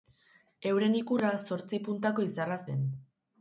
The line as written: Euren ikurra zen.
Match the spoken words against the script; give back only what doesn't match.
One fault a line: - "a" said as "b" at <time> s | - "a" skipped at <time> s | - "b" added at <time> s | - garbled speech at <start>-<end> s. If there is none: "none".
- "zortzi puntako izarra" added at 1.4 s